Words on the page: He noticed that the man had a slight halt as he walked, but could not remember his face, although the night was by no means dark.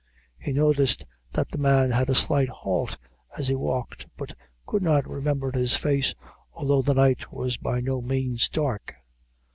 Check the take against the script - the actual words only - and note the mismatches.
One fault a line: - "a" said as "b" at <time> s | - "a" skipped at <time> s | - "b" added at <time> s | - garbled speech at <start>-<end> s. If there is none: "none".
none